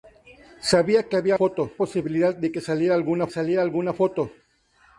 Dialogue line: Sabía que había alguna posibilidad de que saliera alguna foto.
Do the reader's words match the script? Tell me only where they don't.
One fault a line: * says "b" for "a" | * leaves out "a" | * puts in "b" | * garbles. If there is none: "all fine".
* says "foto" for "alguna"
* puts in "saliera alguna"